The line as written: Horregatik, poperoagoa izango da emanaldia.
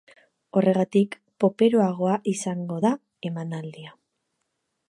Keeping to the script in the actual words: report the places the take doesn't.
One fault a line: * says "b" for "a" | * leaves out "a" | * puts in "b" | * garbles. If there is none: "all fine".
all fine